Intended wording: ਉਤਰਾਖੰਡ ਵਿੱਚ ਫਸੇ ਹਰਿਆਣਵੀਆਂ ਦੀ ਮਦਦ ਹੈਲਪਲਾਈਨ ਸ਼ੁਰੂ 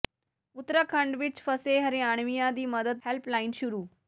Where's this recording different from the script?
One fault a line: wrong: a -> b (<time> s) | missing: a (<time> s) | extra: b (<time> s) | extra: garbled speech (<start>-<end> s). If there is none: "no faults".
no faults